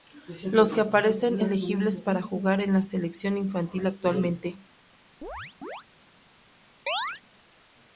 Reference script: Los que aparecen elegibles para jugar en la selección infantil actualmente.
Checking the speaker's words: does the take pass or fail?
pass